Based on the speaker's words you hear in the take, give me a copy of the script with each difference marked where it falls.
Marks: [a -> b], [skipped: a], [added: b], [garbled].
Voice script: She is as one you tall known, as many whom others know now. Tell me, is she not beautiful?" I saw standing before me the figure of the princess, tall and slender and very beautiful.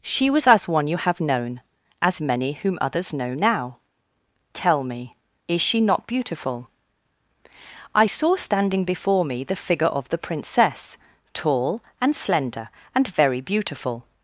She [is -> was] as one you [tall -> have] known, as many whom others know now. Tell me, is she not beautiful?" I saw standing before me the figure of the princess, tall and slender and very beautiful.